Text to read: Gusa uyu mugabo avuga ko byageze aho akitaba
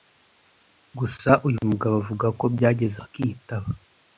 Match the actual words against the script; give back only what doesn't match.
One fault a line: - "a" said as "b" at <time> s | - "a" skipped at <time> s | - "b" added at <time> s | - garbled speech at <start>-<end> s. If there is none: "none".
- "aho" skipped at 3.0 s